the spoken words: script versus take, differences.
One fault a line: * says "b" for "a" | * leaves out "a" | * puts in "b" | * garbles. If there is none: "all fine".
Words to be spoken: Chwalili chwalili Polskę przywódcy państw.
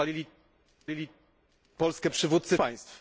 all fine